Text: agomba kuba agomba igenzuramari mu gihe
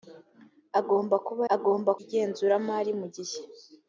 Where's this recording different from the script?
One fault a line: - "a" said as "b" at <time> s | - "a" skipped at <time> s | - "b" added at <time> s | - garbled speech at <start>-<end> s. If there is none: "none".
none